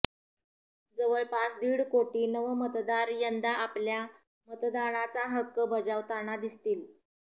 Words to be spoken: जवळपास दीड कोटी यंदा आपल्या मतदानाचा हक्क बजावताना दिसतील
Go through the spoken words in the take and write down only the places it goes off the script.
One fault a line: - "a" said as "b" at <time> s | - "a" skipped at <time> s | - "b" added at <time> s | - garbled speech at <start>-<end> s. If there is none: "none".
- "नवमतदार" added at 2.3 s